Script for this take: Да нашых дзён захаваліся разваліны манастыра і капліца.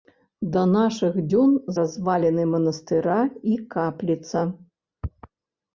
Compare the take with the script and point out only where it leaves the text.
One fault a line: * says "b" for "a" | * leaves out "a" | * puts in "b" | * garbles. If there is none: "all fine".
* leaves out "захаваліся"